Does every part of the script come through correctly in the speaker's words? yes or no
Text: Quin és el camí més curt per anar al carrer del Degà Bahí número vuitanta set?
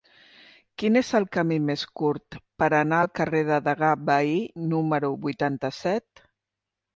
yes